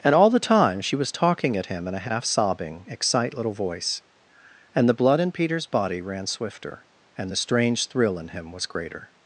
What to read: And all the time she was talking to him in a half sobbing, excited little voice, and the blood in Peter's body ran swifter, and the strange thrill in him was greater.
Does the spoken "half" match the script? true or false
true